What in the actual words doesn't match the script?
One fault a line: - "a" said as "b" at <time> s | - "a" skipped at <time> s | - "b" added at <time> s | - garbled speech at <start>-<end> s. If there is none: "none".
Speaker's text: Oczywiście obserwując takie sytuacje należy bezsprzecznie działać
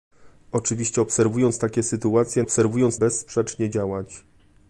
- "należy" said as "obserwując" at 2.4 s